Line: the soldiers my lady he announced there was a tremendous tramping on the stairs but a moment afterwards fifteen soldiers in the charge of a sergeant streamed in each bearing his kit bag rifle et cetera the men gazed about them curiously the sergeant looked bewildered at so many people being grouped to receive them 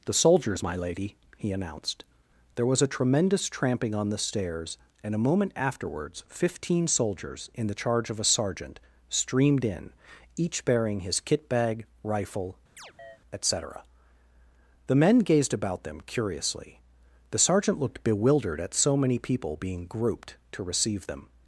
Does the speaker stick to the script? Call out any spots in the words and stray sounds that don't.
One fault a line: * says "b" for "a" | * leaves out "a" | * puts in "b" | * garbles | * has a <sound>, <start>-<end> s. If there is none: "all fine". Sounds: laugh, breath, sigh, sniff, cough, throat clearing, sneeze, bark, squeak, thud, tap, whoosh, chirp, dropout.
* says "and" for "but"
* has a chirp, 12.8-13.2 s